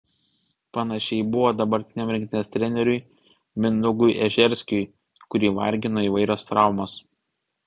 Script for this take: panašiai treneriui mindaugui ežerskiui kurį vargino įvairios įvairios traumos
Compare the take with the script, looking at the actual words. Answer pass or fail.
fail